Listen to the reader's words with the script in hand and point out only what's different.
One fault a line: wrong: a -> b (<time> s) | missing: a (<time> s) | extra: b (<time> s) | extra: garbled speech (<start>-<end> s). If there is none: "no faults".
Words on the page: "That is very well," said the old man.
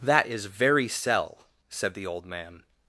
wrong: well -> cell (0.9 s)